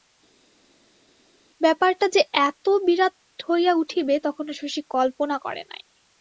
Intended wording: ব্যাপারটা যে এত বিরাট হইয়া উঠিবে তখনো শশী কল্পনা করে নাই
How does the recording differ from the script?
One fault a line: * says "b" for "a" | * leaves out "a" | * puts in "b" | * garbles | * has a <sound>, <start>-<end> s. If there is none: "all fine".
all fine